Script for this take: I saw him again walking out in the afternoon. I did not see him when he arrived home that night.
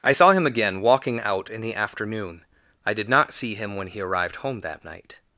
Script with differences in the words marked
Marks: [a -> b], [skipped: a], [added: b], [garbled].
I saw him again walking out in the afternoon. I did not see him when he arrived home that night.